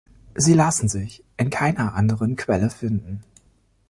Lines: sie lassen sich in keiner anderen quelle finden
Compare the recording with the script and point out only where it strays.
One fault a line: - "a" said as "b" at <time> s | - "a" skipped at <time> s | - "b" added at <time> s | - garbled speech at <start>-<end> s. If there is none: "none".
none